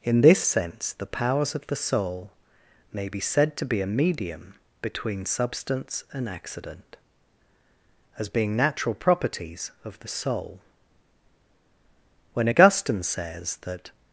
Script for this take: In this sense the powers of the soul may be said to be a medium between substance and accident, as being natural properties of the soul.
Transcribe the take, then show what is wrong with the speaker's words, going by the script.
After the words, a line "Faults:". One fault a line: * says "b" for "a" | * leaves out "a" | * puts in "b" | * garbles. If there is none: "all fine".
In this sense the powers of the soul may be said to be a medium between substance and accident, as being natural properties of the soul. When Augustine says that
Faults:
* puts in "When Augustine says that"